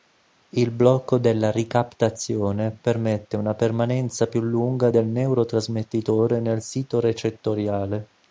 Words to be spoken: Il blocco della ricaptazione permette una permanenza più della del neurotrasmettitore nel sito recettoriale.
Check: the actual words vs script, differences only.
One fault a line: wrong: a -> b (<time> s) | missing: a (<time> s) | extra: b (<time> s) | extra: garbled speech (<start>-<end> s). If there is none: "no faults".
wrong: della -> lunga (4.4 s)